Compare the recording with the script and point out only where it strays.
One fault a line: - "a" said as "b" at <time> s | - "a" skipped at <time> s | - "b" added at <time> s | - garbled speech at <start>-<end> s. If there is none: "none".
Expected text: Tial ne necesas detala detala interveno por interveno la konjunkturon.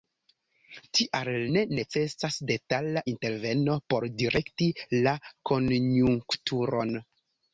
- "detala" skipped at 3.0 s
- "interveno" said as "direkti" at 4.2 s